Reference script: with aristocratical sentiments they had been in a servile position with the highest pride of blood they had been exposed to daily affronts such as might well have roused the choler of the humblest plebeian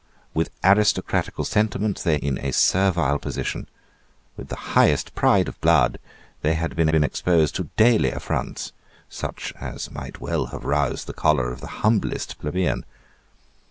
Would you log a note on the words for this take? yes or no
yes